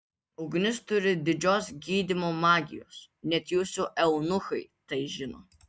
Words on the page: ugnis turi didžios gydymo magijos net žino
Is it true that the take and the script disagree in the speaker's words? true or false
true